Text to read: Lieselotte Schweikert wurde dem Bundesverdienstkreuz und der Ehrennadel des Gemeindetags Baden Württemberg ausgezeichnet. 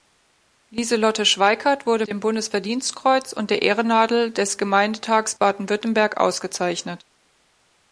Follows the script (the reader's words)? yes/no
yes